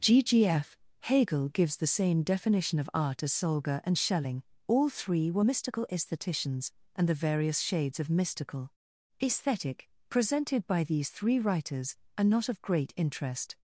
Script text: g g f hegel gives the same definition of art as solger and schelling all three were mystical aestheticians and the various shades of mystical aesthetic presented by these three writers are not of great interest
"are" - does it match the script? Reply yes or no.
yes